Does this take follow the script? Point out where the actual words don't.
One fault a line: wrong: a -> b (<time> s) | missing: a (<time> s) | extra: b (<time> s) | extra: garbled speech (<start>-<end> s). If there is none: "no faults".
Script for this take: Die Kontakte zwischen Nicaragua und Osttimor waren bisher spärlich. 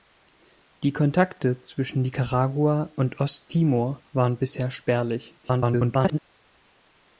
extra: garbled speech (5.4-6.2 s)